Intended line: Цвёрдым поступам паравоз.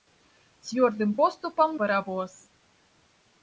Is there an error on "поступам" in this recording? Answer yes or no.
no